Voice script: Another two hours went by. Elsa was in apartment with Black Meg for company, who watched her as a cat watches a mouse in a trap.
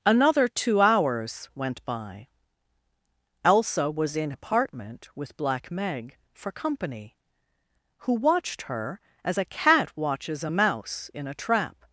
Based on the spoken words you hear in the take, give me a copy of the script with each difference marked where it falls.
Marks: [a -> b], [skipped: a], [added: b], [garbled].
Another two hours went by. Elsa was in apartment with Black Meg for company, who watched her as a cat watches a mouse in a trap.